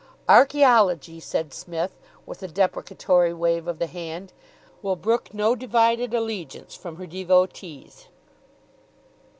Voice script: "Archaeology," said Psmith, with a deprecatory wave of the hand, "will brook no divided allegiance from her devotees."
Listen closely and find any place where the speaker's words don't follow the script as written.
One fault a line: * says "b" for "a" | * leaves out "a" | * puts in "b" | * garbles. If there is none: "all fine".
all fine